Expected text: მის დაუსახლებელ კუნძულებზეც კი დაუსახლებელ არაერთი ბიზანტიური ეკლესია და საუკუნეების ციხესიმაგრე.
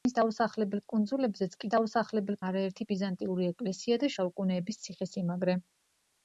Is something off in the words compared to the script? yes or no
no